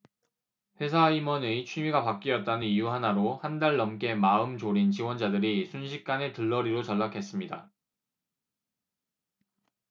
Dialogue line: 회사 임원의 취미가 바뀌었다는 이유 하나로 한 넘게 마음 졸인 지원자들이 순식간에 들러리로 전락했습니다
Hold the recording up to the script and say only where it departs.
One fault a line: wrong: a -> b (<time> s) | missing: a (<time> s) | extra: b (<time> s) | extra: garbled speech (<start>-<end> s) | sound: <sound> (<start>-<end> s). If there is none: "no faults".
extra: 달 (3.6 s)